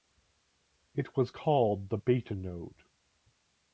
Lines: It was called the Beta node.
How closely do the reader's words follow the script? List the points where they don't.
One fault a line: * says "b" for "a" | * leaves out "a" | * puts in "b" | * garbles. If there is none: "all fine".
all fine